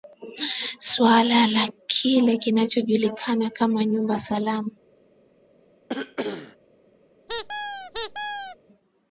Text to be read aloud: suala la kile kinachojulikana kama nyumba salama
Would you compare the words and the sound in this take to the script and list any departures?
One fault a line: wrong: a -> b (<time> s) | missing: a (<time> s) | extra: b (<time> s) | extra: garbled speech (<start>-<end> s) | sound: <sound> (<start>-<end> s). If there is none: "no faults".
sound: cough (5.9-6.6 s)
sound: squeak (7.3-8.6 s)